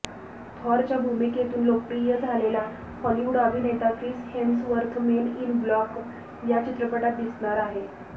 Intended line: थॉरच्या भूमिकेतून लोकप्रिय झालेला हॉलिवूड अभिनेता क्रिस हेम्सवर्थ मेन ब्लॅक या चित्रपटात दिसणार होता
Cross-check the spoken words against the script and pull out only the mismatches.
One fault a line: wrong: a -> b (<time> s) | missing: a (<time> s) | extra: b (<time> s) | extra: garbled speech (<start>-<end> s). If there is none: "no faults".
extra: इन (5.4 s)
wrong: होता -> आहे (7.6 s)